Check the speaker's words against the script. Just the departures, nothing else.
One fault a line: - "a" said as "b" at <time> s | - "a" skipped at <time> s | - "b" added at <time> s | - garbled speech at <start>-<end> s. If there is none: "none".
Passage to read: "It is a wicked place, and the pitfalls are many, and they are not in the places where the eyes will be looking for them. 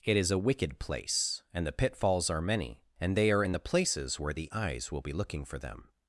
- "not" skipped at 3.4 s